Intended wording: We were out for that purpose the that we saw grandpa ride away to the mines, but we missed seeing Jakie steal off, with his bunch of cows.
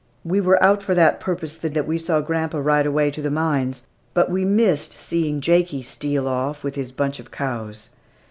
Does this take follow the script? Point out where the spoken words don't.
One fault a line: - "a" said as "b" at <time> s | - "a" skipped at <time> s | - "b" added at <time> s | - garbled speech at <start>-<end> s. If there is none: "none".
none